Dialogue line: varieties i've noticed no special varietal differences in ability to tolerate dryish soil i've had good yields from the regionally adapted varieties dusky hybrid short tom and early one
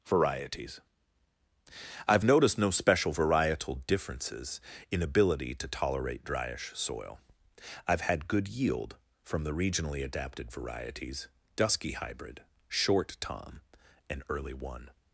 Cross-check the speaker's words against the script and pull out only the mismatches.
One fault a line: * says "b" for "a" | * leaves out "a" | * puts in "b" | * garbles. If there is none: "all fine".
* says "yield" for "yields"